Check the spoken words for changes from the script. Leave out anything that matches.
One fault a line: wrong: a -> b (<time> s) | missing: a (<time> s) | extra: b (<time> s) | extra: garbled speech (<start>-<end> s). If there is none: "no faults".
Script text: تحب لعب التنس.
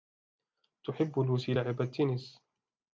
extra: لوسي (1.2 s)